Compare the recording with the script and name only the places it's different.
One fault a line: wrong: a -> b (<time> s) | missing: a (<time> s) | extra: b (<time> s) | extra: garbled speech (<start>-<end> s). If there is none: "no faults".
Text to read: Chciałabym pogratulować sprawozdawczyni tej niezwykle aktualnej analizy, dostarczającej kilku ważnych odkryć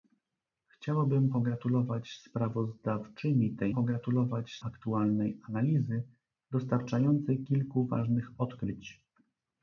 wrong: niezwykle -> pogratulować (3.7 s)